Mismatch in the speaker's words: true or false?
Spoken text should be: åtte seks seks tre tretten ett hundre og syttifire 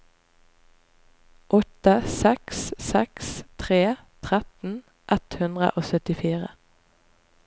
false